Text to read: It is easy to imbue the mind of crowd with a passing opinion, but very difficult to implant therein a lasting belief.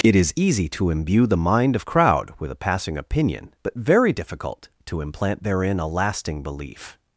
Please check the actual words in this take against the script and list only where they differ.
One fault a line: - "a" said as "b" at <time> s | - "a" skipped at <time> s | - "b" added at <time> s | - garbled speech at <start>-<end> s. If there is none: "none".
none